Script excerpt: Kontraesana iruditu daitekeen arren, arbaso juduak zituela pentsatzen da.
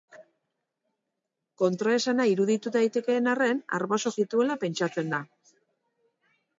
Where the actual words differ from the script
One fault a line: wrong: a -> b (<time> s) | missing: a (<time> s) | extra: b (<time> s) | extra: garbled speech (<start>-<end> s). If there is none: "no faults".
missing: juduak (4.1 s)